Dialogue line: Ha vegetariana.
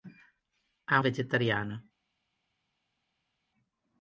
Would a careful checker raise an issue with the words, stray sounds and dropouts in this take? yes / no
no